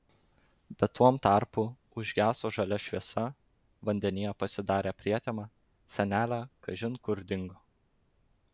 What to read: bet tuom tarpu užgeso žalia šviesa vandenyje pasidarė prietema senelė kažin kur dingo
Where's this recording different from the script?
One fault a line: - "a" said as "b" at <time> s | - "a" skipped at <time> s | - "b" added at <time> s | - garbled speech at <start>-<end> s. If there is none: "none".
none